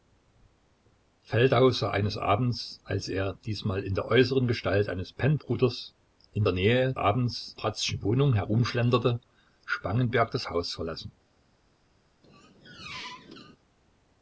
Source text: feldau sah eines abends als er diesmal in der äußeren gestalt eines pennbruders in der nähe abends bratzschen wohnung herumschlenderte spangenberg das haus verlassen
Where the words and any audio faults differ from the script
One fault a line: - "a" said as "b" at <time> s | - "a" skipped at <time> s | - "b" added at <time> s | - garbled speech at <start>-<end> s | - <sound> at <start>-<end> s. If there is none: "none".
- squeak at 12.2-13.6 s